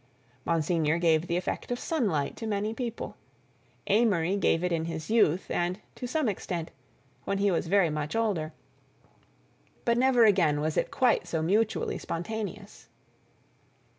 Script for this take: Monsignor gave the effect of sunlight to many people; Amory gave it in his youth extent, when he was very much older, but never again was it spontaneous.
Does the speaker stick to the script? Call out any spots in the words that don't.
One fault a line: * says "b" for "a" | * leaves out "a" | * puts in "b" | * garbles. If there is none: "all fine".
* puts in "and to some"
* puts in "quite so mutually"